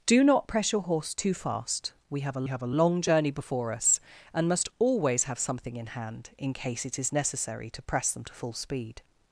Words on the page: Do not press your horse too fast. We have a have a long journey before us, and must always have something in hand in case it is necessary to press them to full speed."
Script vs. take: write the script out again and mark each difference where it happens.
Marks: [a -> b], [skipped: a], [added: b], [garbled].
Do not press your horse too fast. We have a have a long journey before us, and must always have something in hand in case it is necessary to press them to full speed."